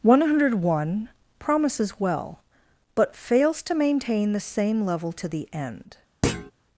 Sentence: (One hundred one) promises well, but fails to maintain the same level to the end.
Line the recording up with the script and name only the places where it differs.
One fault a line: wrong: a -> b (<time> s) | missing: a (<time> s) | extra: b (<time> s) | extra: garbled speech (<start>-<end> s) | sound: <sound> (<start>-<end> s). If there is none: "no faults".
sound: thud (6.2-6.5 s)